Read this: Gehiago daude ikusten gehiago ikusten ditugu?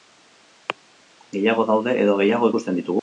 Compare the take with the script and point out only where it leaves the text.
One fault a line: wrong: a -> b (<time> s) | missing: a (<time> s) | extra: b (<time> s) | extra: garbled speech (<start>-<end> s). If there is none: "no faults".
wrong: ikusten -> edo (2.0 s)